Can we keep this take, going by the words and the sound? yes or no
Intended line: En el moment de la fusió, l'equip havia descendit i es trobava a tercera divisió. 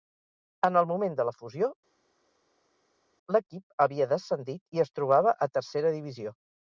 yes